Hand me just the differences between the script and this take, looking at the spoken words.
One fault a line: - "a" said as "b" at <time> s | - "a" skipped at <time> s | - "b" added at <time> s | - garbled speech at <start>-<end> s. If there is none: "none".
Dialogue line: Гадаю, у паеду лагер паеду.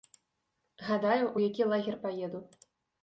- "паеду" said as "які" at 1.4 s